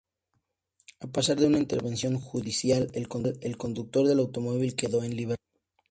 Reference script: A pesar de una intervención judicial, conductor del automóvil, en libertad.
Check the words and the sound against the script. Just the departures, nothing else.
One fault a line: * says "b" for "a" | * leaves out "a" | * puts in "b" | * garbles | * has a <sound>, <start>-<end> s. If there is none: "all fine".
* puts in "el"
* puts in "quedó"